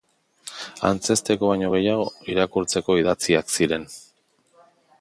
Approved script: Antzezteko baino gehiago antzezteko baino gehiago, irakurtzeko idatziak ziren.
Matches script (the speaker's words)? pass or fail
fail